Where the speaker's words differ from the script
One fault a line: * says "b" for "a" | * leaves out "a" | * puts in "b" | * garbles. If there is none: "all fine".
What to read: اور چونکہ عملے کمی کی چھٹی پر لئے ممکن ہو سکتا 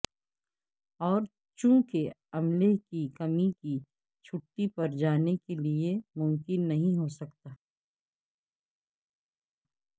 * puts in "کی"
* puts in "جانے کے"
* puts in "نہیں"